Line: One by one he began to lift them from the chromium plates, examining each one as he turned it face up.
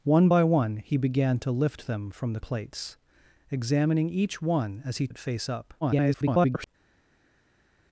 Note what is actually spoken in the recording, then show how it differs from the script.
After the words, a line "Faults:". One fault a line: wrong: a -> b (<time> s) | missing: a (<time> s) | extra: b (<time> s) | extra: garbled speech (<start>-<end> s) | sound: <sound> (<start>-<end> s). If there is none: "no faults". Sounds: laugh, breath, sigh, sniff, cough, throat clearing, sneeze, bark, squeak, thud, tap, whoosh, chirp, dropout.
One by one he began to lift them from the plates, examining each one as he it face up. [garbled]
Faults:
missing: chromium (2.4 s)
missing: turned (5.1 s)
extra: garbled speech (5.8-6.7 s)